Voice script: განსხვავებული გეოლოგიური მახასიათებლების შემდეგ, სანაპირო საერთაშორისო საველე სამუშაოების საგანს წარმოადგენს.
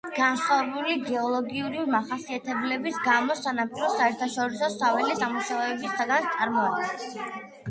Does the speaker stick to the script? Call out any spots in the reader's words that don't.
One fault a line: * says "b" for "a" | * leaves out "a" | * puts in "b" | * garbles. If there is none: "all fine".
* says "გამო" for "შემდეგ"